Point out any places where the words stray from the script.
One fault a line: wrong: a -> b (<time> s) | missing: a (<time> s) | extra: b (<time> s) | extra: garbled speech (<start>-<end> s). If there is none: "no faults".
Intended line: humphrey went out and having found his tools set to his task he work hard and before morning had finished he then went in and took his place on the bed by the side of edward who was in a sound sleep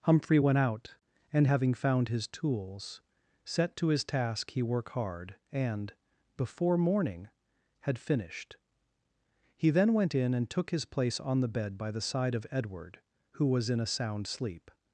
no faults